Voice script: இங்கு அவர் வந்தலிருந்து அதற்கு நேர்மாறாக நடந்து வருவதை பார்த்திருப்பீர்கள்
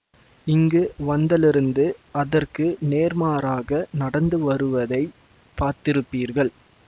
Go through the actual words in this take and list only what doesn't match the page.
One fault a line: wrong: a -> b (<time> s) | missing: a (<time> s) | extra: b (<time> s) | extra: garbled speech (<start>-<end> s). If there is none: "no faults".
missing: அவர் (0.8 s)